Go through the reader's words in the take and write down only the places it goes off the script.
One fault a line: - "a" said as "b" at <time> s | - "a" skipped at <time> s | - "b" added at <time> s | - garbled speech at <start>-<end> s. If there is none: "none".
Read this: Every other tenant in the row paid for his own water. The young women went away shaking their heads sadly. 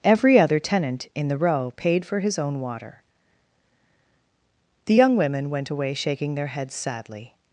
none